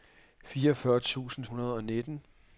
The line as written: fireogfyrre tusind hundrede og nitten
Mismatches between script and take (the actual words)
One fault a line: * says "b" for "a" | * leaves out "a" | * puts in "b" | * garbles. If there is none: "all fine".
all fine